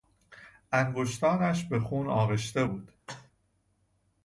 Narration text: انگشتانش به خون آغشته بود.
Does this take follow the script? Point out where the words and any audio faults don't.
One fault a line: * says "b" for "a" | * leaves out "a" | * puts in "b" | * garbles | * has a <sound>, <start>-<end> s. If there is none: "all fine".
* has a cough, 3.1-3.3 s